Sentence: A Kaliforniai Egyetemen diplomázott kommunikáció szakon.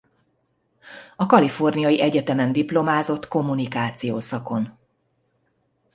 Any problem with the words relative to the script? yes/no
no